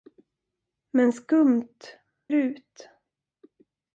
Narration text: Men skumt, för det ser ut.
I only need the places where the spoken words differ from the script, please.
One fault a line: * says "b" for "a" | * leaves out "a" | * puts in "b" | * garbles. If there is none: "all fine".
* leaves out "för det ser"